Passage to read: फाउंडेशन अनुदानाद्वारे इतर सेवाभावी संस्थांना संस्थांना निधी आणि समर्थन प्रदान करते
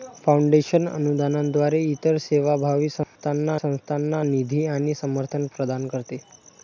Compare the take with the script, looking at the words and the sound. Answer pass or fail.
fail